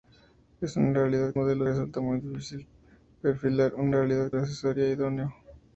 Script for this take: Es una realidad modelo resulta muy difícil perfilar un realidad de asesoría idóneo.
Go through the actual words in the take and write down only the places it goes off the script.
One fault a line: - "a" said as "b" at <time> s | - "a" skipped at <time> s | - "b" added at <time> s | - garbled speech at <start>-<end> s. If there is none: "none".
none